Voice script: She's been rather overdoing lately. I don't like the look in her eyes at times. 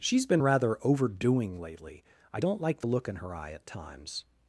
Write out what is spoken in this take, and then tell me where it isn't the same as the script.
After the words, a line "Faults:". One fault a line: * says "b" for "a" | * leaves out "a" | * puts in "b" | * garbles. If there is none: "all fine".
She's been rather overdoing lately. I don't like the look in her eye at times.
Faults:
* says "eye" for "eyes"